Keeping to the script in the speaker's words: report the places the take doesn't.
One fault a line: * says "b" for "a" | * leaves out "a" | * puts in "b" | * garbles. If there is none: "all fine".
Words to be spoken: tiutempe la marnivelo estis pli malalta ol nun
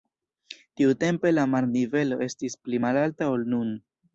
all fine